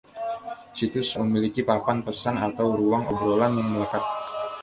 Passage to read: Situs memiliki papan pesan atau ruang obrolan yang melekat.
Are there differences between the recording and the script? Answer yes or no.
no